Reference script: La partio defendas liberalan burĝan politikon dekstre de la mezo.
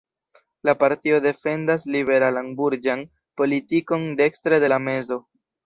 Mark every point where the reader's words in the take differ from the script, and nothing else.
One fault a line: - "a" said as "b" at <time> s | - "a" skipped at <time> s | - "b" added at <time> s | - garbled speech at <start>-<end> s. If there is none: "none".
none